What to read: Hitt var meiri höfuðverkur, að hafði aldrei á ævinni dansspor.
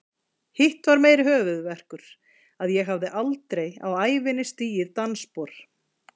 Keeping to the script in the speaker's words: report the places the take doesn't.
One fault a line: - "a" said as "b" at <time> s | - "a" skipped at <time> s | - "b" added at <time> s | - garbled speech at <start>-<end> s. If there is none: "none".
- "ég" added at 2.8 s
- "stigið" added at 4.5 s